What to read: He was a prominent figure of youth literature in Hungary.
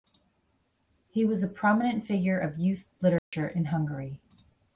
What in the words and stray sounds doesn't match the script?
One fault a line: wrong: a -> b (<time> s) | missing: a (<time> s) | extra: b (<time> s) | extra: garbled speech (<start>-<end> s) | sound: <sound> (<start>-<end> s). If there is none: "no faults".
sound: dropout (3.2-3.3 s)